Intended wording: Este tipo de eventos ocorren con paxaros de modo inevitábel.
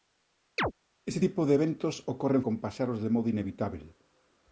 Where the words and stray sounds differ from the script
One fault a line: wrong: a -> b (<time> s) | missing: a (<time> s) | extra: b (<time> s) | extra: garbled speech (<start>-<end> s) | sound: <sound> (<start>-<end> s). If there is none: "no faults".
sound: chirp (0.6-0.7 s)